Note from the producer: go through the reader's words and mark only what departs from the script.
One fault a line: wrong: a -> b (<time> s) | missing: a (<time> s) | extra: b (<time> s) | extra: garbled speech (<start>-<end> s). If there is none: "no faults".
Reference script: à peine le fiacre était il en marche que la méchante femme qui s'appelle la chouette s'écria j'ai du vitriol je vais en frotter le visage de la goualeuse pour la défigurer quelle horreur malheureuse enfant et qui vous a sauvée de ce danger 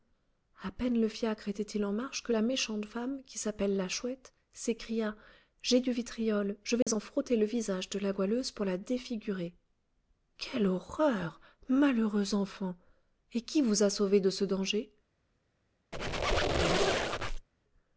no faults